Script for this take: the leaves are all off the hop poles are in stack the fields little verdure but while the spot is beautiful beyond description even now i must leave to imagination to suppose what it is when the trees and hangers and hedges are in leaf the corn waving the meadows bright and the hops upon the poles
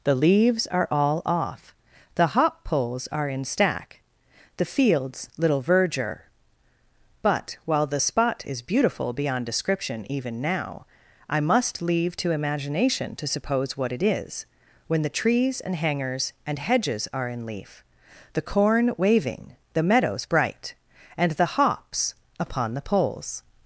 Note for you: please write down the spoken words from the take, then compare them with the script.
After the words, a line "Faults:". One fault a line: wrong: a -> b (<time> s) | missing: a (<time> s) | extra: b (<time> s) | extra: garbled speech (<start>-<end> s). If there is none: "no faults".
the leaves are all off the hop poles are in stack the fields little verdure but while the spot is beautiful beyond description even now i must leave to imagination to suppose what it is when the trees and hangers and hedges are in leaf the corn waving the meadows bright and the hops upon the poles
Faults:
no faults